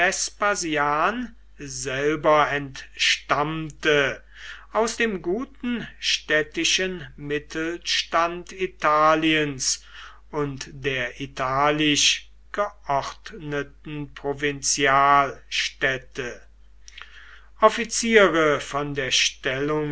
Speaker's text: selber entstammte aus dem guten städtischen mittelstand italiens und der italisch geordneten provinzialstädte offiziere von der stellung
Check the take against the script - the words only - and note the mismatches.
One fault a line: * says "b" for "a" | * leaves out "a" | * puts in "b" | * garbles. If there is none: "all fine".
all fine